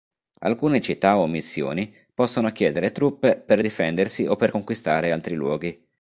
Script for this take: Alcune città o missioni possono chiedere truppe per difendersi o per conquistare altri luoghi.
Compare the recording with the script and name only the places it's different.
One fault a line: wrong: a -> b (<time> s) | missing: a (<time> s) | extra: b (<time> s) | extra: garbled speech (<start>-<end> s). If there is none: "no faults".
no faults